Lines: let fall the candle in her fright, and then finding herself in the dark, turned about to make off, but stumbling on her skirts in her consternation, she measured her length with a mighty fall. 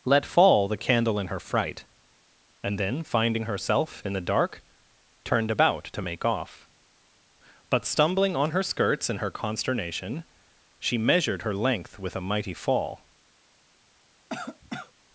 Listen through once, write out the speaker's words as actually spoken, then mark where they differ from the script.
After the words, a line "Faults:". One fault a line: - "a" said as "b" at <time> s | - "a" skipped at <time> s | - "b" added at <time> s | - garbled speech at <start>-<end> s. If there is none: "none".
let fall the candle in her fright, and then finding herself in the dark, turned about to make off, but stumbling on her skirts in her consternation, she measured her length with a mighty fall.
Faults:
none